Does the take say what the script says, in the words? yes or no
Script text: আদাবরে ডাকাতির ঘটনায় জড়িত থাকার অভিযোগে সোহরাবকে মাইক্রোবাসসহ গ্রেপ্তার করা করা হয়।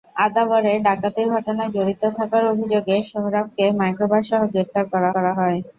yes